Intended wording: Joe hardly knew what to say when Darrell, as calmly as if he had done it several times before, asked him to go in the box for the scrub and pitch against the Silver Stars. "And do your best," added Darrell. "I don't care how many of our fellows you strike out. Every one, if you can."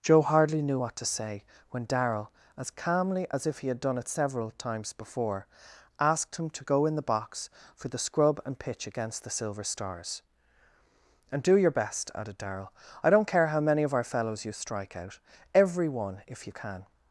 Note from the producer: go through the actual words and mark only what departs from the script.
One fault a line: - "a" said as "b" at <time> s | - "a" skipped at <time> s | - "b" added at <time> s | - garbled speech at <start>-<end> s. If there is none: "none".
none